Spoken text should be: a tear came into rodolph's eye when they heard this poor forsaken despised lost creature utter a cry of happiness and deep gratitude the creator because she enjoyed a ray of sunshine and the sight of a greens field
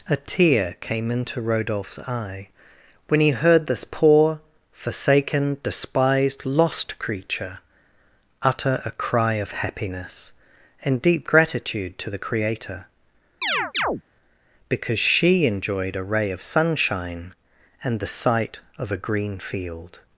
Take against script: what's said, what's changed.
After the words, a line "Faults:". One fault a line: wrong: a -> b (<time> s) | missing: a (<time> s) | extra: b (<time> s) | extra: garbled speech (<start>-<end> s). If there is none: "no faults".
a tear came into rodolph's eye when he heard this poor forsaken despised lost creature utter a cry of happiness and deep gratitude to the creator because she enjoyed a ray of sunshine and the sight of a green field
Faults:
wrong: they -> he (3.2 s)
extra: to (12.0 s)
wrong: greens -> green (19.0 s)